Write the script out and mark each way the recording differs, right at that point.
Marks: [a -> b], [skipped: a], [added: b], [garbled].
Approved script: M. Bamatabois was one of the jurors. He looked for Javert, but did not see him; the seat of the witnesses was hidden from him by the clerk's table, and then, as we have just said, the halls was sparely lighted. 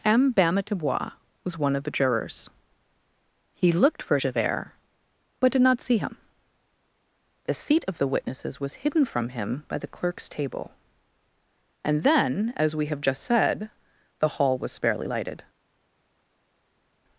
M. Bamatabois was one of the jurors. He looked for Javert, but did not see him; the seat of the witnesses was hidden from him by the clerk's table, and then, as we have just said, the [halls -> hall] was sparely lighted.